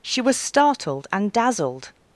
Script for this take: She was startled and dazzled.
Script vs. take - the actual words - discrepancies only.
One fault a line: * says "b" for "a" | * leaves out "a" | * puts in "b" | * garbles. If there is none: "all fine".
all fine